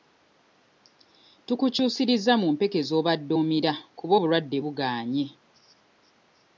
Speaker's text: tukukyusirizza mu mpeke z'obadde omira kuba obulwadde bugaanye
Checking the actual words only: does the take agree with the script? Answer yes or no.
yes